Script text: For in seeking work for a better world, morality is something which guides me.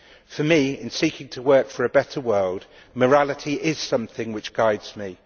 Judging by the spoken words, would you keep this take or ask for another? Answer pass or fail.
fail